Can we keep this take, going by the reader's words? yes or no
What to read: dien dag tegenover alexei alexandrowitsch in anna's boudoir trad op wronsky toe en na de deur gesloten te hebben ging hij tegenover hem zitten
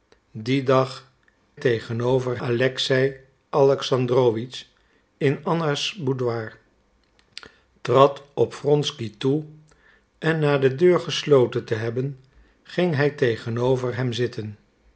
yes